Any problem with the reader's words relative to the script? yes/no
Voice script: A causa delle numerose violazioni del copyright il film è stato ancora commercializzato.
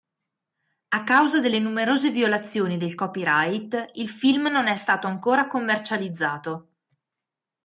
yes